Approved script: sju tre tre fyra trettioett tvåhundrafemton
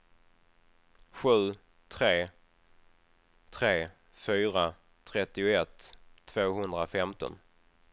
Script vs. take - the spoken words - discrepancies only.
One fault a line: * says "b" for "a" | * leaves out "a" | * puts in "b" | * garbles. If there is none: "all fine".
all fine